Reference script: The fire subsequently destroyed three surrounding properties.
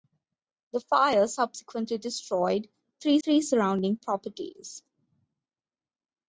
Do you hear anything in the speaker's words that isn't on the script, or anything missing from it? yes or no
yes